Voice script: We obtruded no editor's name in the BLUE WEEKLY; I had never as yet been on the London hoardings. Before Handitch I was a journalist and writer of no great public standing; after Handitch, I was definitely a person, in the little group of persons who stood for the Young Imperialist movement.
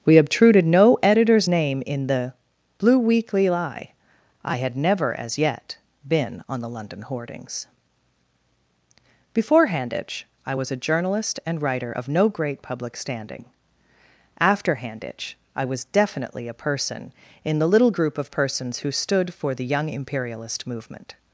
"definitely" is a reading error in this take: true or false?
false